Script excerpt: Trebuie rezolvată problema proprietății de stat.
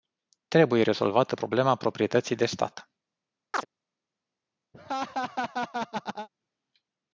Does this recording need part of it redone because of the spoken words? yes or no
no